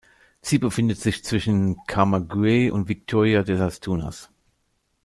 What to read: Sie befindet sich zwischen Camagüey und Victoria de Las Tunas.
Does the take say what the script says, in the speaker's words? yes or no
yes